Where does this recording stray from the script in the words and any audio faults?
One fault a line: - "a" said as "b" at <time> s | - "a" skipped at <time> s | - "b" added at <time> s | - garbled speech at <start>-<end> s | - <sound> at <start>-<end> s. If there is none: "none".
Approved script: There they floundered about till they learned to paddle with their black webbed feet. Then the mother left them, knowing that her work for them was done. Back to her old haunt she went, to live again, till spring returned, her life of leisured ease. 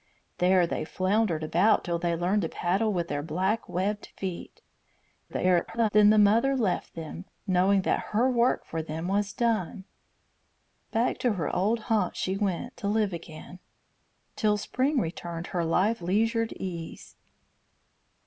- garbled speech at 5.3-5.9 s
- "of" skipped at 16.0 s